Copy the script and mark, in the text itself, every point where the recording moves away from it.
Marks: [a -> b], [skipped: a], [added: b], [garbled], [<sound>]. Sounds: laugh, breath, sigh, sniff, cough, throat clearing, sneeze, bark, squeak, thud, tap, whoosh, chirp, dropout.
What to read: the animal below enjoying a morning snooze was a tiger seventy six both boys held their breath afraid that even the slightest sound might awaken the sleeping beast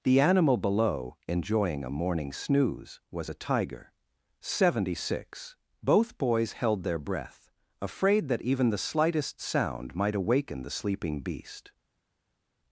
the animal below enjoying a morning snooze was a tiger seventy six both boys held their breath afraid that even the slightest sound might awaken the sleeping beast